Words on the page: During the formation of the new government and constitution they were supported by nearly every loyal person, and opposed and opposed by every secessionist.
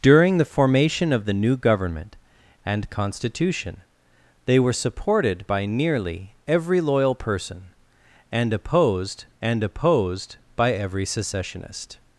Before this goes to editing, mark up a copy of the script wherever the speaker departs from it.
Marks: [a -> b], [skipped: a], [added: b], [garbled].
During the formation of the new government and constitution they were supported by nearly every loyal person, and opposed and opposed by every secessionist.